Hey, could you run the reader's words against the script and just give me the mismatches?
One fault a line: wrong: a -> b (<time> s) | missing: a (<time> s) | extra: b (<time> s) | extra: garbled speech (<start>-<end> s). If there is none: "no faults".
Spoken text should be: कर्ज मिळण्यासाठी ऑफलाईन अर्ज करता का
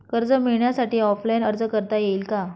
extra: येईल (2.0 s)